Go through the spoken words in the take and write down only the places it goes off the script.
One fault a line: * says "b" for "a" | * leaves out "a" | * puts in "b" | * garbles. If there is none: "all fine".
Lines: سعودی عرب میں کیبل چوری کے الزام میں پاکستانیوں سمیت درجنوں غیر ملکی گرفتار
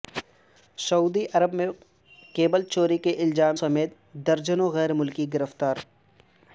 * leaves out "میں پاکستانیوں"